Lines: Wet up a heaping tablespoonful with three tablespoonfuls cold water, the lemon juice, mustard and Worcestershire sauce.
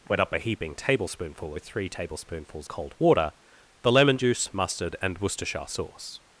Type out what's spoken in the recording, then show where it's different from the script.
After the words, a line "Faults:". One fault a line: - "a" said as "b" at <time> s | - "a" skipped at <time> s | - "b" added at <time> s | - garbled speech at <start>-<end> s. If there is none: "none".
Wet up a heaping tablespoonful with three tablespoonfuls cold water, the lemon juice, mustard and Worcestershire sauce.
Faults:
none